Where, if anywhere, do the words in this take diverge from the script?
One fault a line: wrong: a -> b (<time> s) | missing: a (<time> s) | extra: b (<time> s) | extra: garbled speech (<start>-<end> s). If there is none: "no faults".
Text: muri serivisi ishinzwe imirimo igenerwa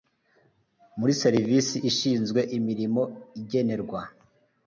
no faults